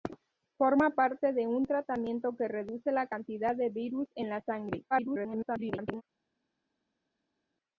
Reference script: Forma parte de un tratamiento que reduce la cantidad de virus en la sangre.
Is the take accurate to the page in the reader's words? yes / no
no